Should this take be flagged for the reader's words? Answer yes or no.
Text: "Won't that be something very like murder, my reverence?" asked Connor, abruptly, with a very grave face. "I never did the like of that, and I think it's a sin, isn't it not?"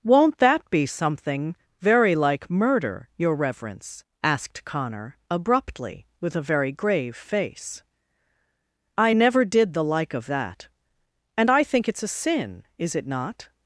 yes